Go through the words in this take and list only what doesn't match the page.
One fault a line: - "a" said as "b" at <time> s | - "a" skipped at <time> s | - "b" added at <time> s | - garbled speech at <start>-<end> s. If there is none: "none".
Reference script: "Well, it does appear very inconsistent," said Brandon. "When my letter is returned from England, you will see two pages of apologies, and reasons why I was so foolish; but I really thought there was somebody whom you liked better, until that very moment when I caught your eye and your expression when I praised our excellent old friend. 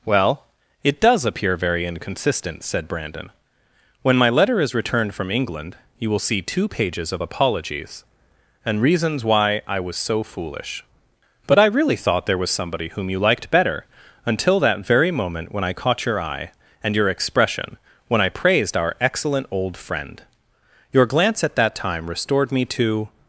- "Your glance at that time restored me to" added at 20.9 s